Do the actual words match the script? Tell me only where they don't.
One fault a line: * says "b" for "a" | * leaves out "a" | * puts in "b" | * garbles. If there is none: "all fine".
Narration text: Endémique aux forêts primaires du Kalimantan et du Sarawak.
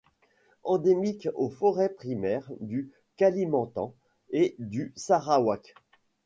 all fine